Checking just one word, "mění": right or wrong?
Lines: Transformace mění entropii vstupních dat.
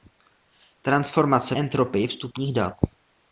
wrong